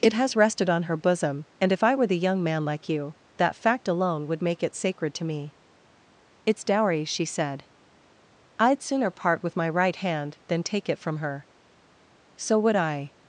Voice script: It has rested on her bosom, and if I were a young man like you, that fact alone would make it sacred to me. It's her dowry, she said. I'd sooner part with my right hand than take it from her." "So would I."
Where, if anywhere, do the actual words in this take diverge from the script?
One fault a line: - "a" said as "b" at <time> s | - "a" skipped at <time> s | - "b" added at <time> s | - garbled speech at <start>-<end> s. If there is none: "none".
- "a" said as "the" at 2.1 s
- "her" skipped at 6.6 s